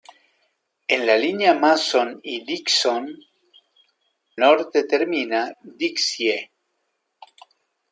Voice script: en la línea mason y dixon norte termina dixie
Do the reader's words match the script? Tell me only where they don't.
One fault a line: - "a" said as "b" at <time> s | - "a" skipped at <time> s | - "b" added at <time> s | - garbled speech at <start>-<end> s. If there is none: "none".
none